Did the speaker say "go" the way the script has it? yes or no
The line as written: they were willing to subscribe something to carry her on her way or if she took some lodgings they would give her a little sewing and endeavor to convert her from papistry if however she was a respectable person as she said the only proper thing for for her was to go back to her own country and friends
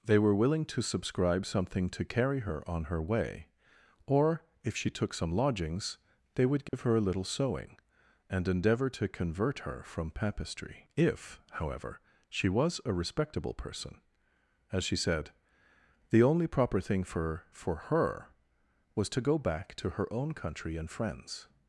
yes